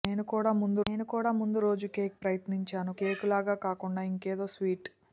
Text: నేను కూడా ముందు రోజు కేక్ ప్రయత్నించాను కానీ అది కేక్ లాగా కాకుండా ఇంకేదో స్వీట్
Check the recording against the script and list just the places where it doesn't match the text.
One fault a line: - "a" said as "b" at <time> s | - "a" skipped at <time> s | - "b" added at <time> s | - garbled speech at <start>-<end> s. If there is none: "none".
- "నేను కూడా ముందు" added at 0.9 s
- "కానీ అది" skipped at 2.9 s